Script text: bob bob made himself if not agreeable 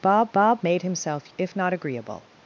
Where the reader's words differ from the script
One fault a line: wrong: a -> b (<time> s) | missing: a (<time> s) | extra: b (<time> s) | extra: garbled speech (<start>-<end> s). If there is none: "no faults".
no faults